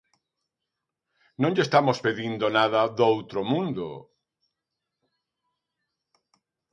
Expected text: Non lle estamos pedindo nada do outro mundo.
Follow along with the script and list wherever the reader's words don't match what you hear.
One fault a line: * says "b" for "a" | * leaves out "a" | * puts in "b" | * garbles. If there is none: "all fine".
all fine